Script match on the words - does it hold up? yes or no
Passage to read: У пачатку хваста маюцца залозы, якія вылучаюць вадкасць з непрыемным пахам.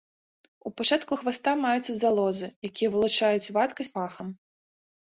no